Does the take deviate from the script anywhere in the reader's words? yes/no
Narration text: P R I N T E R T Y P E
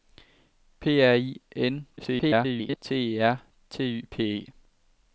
yes